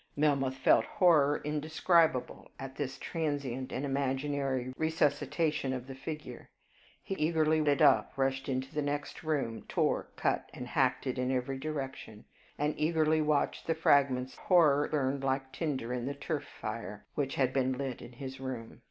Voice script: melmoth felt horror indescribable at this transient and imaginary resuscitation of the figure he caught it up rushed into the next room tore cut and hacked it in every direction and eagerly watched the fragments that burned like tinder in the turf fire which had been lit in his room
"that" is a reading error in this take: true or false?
true